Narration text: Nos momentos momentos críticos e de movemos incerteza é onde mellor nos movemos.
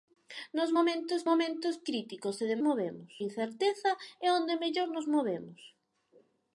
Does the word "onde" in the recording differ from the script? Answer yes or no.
no